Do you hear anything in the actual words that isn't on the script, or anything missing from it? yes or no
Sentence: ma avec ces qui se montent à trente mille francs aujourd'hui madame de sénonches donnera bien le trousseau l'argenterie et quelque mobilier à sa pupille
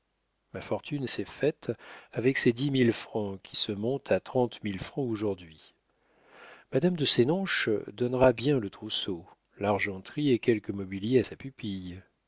yes